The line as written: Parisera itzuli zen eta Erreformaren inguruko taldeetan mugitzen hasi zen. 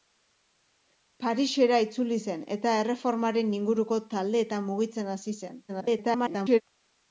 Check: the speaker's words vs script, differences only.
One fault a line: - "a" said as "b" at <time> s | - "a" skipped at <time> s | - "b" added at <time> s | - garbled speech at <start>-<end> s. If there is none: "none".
- garbled speech at 5.7-6.6 s